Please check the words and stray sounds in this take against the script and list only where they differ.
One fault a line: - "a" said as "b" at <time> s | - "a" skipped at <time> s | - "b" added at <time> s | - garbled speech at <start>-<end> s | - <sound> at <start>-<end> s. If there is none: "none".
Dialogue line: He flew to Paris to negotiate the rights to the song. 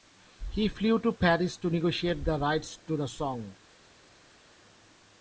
none